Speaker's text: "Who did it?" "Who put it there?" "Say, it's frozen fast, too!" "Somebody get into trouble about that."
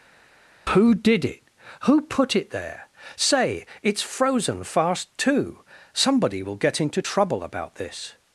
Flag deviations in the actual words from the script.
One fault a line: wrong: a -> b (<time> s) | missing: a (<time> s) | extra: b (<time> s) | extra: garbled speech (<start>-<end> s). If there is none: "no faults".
extra: will (6.4 s)
wrong: that -> this (7.8 s)